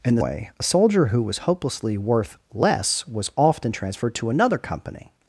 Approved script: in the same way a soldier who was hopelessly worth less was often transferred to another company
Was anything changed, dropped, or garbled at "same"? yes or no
yes